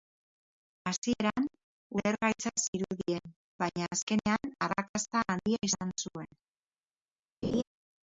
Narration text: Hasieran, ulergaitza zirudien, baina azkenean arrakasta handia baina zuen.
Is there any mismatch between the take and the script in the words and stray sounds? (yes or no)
yes